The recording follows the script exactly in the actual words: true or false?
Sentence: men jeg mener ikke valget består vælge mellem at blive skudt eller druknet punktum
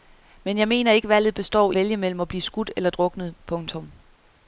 true